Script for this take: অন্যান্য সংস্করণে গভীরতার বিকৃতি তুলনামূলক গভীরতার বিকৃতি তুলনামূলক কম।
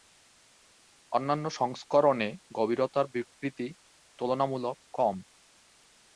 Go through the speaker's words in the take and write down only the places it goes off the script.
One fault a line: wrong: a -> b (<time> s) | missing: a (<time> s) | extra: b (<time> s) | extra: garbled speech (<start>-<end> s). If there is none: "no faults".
missing: গভীরতার বিকৃতি তুলনামূলক (4.8 s)